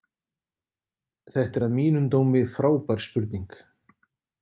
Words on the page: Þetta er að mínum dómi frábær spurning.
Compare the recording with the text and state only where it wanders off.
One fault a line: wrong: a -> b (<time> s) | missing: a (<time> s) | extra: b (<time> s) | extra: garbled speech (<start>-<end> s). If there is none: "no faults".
no faults